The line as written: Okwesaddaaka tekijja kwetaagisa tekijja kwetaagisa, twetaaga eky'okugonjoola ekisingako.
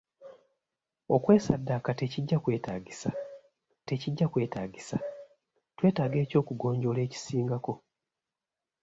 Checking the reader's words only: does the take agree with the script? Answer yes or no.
yes